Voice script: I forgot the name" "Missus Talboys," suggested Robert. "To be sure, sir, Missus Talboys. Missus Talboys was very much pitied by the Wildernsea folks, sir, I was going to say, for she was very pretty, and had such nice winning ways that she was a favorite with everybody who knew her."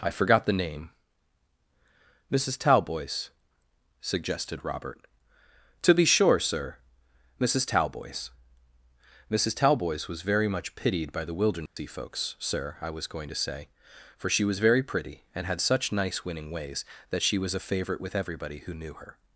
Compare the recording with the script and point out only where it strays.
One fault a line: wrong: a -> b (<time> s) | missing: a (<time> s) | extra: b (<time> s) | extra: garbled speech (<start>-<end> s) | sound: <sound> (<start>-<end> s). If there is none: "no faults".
sound: dropout (11.7-11.8 s)